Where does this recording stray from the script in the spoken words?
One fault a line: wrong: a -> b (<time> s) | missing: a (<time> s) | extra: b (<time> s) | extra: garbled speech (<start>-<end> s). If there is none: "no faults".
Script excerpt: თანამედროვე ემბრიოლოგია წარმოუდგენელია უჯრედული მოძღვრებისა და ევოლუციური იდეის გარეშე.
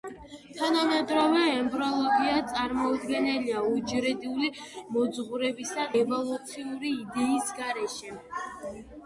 missing: და (5.9 s)